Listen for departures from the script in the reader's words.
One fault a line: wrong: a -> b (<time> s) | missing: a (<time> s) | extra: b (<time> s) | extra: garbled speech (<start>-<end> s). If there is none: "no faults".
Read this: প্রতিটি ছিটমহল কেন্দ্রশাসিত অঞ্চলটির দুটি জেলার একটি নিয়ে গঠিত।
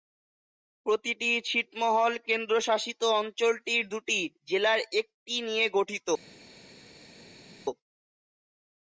no faults